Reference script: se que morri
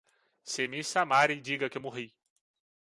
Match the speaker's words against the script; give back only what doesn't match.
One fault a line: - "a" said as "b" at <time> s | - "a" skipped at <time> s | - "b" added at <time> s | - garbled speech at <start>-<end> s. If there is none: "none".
- "me chamarem diga" added at 0.7 s